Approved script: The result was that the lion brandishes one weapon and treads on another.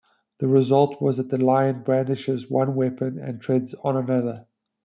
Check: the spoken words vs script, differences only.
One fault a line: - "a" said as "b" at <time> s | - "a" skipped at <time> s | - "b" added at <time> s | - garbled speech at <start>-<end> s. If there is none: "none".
none